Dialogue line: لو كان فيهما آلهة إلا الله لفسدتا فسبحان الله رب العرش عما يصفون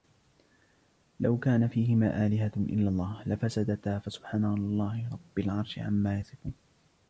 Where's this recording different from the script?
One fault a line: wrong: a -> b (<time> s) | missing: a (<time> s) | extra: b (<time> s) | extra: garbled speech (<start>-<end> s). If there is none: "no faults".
no faults